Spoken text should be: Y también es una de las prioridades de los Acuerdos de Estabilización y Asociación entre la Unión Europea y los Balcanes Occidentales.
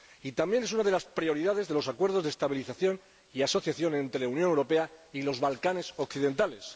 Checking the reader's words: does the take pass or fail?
pass